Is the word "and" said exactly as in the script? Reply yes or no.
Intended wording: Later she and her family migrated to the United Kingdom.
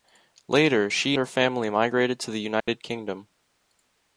no